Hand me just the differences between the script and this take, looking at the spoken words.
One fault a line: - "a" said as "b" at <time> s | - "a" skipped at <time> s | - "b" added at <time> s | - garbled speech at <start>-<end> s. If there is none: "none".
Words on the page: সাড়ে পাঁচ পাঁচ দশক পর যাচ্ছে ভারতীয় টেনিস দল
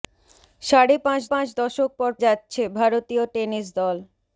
none